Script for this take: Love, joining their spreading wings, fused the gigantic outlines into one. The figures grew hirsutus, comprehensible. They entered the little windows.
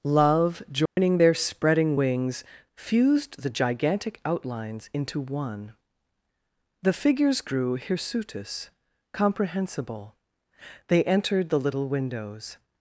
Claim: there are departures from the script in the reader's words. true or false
false